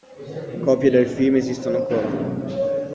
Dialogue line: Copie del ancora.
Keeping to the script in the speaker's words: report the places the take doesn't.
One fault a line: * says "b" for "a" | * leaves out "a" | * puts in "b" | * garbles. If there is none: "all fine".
* puts in "film esistono"